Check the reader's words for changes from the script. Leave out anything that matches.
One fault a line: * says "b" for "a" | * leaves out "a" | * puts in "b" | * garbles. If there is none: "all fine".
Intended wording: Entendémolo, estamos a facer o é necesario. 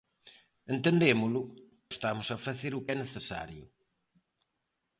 all fine